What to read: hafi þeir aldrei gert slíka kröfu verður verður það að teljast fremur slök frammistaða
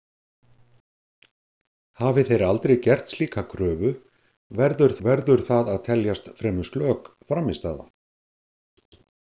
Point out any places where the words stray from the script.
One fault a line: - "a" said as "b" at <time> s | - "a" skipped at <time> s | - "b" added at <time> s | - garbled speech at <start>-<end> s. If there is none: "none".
none